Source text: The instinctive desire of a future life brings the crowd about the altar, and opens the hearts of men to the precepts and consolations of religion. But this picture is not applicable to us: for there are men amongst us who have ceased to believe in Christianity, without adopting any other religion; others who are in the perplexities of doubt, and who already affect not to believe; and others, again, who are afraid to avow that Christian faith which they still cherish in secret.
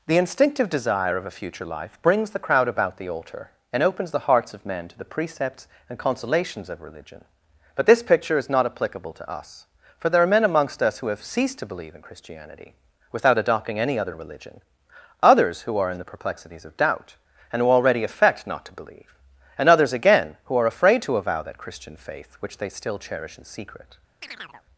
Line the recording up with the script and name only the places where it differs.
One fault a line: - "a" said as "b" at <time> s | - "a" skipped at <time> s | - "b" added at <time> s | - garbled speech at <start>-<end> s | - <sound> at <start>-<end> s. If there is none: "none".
- chirp at 24.2-24.6 s